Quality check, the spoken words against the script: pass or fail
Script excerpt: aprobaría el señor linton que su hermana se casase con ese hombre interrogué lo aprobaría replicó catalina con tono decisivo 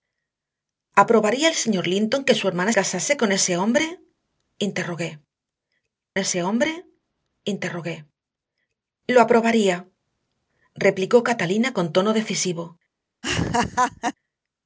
fail